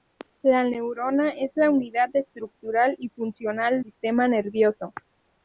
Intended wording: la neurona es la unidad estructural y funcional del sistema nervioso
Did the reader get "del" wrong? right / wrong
wrong